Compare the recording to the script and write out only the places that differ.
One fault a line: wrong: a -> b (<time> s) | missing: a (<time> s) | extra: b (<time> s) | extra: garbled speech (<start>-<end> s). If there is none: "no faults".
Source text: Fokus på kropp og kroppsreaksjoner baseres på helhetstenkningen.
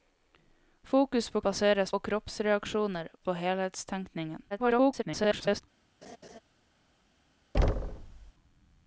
wrong: kropp -> baseres (1.5 s)
missing: baseres (3.1 s)
extra: garbled speech (4.5-5.6 s)